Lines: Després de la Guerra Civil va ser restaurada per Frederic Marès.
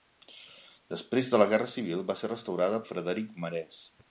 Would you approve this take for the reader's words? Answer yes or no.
no